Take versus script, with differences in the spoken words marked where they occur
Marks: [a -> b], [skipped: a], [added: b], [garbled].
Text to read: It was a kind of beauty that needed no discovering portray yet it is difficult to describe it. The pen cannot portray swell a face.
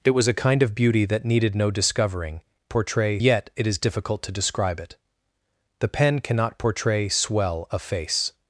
It was a kind of beauty that needed no discovering portray yet it is difficult to describe it. The pen cannot portray swell a face.